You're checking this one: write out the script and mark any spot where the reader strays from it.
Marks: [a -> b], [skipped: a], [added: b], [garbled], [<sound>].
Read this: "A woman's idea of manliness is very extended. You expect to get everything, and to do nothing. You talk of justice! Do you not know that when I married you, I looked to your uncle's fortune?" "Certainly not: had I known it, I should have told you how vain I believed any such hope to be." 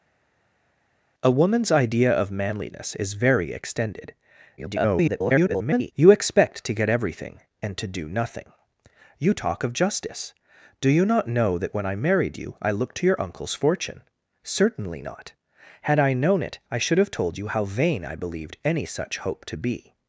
"A woman's idea of manliness is very extended. [garbled] You expect to get everything, and to do nothing. You talk of justice! Do you not know that when I married you, I looked to your uncle's fortune?" "Certainly not: had I known it, I should have told you how vain I believed any such hope to be."